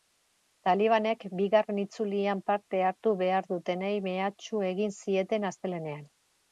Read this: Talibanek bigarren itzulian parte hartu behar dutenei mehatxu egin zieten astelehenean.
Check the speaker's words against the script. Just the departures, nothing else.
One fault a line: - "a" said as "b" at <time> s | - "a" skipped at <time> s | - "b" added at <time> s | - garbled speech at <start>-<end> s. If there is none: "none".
none